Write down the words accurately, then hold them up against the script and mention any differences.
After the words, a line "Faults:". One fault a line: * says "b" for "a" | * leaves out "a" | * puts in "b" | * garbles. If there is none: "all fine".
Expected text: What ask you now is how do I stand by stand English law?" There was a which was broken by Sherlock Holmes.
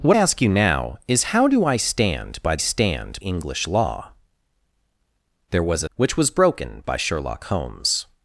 What ask you now is how do I stand by stand English law?" There was a which was broken by Sherlock Holmes.
Faults:
all fine